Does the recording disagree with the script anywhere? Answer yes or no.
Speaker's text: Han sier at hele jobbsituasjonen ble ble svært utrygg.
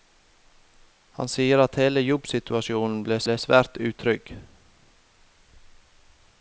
no